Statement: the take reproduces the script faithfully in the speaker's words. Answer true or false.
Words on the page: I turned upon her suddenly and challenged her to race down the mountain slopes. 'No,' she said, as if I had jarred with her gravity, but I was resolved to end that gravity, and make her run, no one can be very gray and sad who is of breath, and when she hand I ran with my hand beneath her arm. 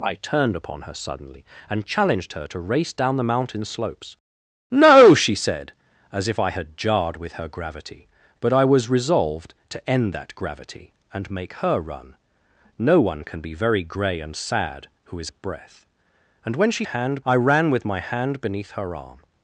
true